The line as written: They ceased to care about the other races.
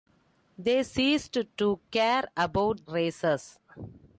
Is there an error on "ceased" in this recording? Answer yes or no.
no